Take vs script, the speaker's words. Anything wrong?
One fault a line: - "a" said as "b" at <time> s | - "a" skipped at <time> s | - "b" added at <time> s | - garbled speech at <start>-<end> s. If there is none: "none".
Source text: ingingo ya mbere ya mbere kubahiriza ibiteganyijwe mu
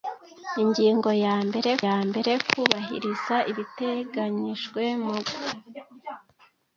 none